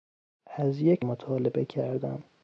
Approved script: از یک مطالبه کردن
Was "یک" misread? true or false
false